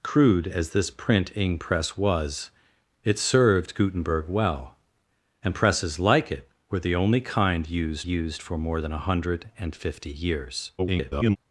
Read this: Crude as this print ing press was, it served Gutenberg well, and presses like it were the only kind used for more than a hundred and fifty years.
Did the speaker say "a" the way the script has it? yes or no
yes